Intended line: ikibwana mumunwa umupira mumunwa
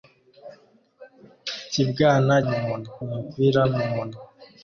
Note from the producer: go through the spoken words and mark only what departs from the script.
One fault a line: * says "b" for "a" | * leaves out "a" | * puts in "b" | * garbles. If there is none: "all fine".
all fine